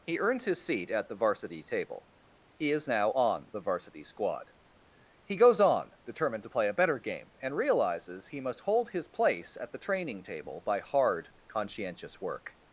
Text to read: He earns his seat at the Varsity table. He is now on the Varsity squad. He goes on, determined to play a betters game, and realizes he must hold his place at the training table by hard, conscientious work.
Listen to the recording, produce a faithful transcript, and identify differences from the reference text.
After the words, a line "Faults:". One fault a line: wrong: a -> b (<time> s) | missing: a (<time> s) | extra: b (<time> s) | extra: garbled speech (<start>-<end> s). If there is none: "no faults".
He earns his seat at the Varsity table. He is now on the Varsity squad. He goes on, determined to play a better game, and realizes he must hold his place at the training table by hard, conscientious work.
Faults:
wrong: betters -> better (6.7 s)